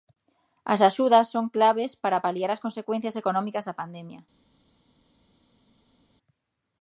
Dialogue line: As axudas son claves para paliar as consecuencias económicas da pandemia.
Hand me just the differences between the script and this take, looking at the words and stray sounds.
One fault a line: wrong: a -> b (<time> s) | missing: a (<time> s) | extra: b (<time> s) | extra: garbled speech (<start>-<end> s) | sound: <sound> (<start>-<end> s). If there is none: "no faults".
no faults